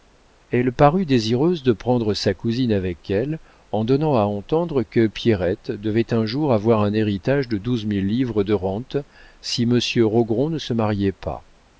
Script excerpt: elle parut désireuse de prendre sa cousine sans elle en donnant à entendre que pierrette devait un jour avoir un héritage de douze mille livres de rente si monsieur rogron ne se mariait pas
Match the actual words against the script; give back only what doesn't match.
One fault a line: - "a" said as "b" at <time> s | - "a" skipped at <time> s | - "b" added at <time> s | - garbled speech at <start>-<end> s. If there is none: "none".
- "sans" said as "avec" at 2.7 s